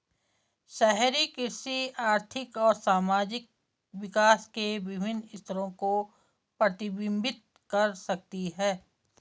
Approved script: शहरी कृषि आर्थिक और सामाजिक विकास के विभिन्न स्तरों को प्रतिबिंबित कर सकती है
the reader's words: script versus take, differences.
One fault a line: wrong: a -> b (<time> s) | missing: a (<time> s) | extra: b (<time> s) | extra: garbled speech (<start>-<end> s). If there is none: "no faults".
no faults